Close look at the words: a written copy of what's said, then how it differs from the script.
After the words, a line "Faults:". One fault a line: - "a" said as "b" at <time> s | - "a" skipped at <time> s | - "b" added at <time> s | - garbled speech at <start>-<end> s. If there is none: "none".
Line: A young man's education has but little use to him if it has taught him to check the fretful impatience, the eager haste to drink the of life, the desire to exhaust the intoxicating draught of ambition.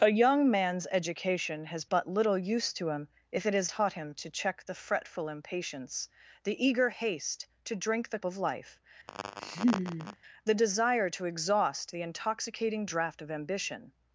A young man's education has but little use to him if it has taught him to check the fretful impatience, the eager haste to drink the of life, the desire to exhaust the intoxicating draught of ambition.
Faults:
none